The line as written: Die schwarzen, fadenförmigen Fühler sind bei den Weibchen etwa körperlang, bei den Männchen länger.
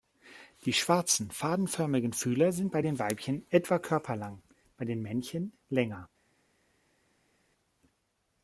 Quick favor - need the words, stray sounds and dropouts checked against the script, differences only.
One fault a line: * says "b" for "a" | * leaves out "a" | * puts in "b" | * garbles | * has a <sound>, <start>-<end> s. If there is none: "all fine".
all fine